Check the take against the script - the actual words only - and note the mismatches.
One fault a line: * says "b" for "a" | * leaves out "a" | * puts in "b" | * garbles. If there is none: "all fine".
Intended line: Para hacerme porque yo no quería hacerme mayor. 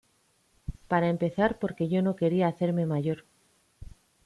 * says "empezar" for "hacerme"